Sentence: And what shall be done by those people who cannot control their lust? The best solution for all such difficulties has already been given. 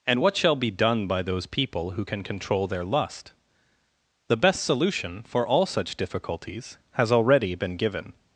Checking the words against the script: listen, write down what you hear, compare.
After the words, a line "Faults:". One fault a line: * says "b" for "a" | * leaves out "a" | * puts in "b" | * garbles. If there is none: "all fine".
And what shall be done by those people who can control their lust? The best solution for all such difficulties has already been given.
Faults:
* says "can" for "cannot"